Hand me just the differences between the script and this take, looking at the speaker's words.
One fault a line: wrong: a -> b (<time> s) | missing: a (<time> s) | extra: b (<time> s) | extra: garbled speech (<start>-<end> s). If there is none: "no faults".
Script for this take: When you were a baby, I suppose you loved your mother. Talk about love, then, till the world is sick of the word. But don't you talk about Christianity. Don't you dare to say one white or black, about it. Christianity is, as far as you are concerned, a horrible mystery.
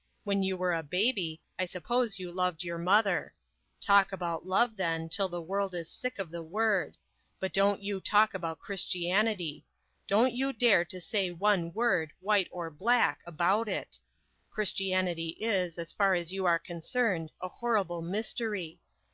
extra: word (11.7 s)